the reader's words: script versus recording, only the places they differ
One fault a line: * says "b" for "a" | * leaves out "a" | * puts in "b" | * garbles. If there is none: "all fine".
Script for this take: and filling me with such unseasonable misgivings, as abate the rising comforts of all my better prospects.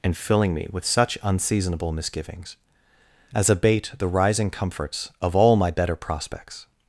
all fine